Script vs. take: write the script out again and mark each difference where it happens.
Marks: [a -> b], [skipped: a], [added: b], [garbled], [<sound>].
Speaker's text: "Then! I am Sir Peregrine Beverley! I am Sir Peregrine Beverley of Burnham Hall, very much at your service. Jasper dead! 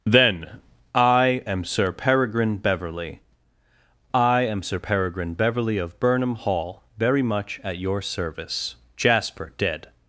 "Then! I am Sir Peregrine Beverley! I am Sir Peregrine Beverley of Burnham Hall, very much at your service. Jasper dead!